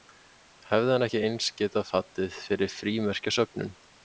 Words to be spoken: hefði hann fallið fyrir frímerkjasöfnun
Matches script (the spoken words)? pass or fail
fail